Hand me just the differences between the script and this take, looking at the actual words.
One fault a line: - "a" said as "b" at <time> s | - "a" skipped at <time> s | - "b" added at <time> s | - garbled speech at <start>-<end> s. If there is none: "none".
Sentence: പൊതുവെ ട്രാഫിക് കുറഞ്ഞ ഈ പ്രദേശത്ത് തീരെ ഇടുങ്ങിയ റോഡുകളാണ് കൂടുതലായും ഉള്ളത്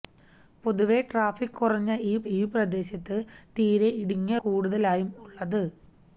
- "ഈ" added at 2.3 s
- "റോഡുകളാണ്" skipped at 4.4 s